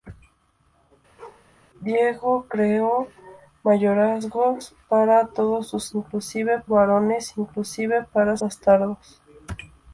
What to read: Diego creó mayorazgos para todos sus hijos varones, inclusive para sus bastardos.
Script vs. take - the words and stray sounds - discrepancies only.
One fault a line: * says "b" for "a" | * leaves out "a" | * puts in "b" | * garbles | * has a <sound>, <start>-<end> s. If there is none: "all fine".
* has a bark, 1.2-1.5 s
* says "inclusive" for "hijos"
* leaves out "sus"